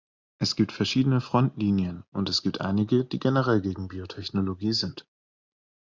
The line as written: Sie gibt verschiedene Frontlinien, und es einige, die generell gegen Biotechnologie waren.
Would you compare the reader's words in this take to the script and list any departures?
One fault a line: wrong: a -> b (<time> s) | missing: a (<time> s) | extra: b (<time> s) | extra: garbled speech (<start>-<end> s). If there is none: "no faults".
wrong: Sie -> Es (0.4 s)
extra: gibt (2.4 s)
wrong: waren -> sind (4.7 s)